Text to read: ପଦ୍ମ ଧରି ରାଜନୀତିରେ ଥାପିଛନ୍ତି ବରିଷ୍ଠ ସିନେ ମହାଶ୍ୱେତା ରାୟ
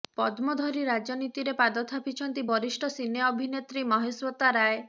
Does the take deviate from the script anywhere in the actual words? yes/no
yes